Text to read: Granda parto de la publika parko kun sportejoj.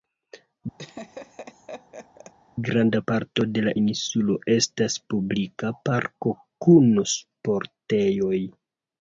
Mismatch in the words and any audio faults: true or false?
true